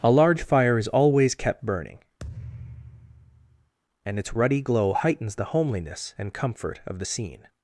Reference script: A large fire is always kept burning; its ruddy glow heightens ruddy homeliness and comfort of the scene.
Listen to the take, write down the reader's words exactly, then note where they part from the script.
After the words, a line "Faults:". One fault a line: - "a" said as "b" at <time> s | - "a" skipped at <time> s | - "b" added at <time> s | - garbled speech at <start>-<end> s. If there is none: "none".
A large fire is always kept burning; and its ruddy glow heightens the homeliness and comfort of the scene.
Faults:
- "and" added at 4.0 s
- "ruddy" said as "the" at 5.4 s